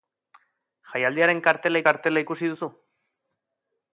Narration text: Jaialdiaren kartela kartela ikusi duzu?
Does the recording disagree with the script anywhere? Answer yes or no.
no